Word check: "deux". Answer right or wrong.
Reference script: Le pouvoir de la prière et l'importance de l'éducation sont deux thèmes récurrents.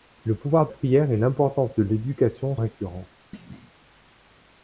wrong